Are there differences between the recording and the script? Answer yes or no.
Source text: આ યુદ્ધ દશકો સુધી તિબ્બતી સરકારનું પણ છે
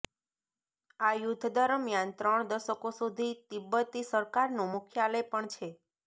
yes